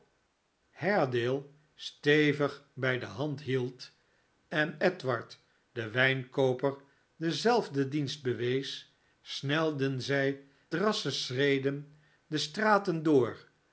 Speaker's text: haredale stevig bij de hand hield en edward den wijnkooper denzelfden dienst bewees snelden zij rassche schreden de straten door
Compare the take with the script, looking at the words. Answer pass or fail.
pass